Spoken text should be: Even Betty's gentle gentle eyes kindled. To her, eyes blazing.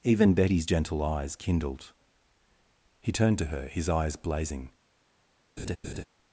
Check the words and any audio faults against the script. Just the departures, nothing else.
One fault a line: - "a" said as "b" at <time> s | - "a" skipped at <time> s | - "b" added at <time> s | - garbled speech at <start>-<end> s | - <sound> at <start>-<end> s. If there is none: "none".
- "gentle" skipped at 1.0 s
- "He turned" added at 3.0 s
- "his" added at 3.7 s
- laugh at 5.6-6.0 s